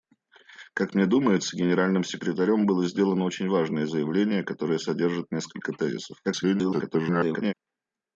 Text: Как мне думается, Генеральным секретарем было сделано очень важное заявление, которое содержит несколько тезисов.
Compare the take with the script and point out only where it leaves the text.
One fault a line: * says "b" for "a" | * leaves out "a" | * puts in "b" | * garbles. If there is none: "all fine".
* garbles